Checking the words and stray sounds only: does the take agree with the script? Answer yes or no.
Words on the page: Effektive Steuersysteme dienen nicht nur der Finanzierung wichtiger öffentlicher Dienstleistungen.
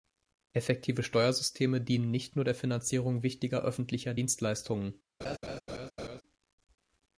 no